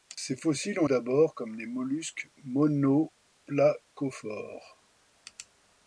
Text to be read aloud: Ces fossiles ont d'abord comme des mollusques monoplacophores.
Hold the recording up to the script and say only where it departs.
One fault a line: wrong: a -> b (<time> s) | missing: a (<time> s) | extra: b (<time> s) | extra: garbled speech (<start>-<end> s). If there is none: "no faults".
no faults